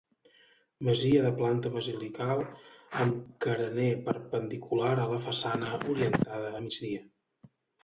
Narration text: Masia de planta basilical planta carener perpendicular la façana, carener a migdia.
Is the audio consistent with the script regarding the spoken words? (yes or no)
no